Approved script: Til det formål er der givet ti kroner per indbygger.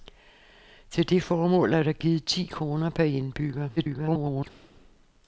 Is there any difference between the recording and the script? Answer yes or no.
yes